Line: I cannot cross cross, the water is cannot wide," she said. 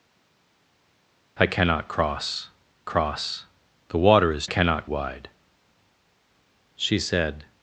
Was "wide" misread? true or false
false